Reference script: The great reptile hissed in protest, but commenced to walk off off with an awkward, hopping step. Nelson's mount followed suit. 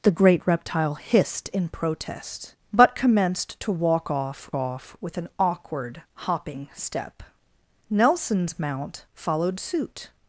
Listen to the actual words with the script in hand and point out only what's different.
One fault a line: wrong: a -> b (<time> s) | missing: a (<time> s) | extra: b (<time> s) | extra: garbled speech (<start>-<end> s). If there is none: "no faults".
no faults